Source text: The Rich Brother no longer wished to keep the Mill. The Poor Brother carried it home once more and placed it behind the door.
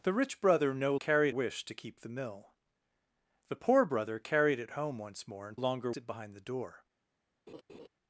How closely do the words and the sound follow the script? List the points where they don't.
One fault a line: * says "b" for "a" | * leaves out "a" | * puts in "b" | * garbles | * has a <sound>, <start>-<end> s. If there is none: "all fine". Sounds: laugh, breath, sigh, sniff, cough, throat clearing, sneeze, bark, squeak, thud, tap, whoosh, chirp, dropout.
* says "carried" for "longer"
* says "longer" for "placed"
* has a laugh, 7.5-7.9 s